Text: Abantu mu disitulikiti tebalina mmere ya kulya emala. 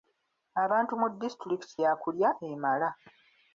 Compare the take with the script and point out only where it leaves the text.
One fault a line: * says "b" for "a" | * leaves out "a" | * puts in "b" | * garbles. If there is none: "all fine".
* leaves out "tebalina mmere"